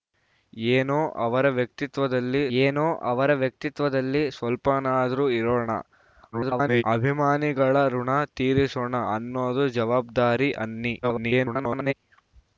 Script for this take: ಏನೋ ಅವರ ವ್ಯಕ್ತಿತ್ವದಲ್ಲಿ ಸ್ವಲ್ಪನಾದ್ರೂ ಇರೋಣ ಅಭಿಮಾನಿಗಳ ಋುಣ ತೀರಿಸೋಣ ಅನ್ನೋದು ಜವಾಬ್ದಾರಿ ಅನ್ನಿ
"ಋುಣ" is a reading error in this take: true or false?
false